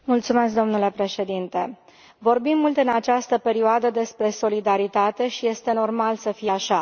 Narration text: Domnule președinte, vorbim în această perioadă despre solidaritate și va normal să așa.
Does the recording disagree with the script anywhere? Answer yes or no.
yes